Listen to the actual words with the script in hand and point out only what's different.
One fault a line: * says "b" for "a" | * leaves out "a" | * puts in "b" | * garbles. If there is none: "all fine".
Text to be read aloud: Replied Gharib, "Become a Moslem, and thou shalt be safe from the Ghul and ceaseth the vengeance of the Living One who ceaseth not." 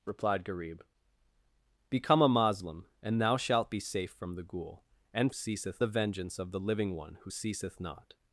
all fine